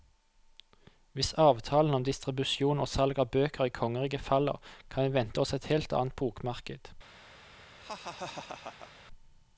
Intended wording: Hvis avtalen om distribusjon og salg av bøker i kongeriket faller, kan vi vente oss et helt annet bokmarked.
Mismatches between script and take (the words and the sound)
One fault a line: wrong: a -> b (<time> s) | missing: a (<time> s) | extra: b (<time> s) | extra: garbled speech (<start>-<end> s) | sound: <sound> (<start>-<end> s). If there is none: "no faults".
sound: laugh (7.8-8.9 s)